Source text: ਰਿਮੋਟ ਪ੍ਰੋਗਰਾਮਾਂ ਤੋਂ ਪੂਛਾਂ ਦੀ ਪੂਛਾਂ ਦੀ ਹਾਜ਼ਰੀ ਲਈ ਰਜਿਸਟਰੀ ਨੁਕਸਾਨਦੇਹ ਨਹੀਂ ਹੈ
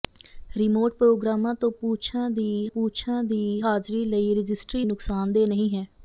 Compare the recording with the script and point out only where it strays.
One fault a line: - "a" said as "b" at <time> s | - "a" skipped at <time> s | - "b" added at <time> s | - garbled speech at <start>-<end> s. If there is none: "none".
none